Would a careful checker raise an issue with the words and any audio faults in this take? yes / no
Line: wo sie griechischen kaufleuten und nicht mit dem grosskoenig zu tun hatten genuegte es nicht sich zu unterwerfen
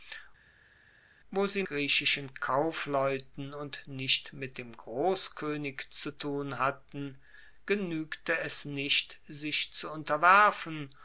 no